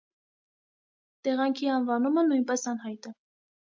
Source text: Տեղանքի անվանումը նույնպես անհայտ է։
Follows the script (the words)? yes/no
yes